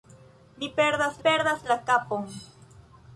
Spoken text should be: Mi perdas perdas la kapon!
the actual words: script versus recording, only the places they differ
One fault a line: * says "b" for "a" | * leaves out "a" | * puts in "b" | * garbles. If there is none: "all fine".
all fine